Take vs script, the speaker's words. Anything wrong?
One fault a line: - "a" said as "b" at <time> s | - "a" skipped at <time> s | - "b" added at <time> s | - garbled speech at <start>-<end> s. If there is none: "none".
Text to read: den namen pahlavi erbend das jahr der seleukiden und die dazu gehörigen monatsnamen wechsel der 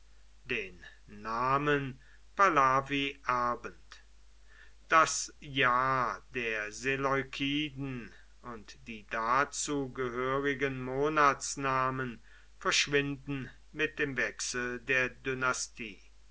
- "verschwinden mit dem" added at 12.6 s